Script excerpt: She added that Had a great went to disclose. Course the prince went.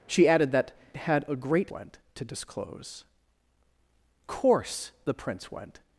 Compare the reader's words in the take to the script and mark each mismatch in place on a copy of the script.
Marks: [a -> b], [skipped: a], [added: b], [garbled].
She added that Had a great went to disclose. Course the prince went.